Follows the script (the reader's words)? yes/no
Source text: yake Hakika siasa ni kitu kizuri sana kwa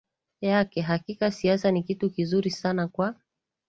yes